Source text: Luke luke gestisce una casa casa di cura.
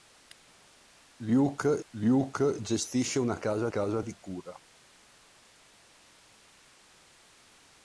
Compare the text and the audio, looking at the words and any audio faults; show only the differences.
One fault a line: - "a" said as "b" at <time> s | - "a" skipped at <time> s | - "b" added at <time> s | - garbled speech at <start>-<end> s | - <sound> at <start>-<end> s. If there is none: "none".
none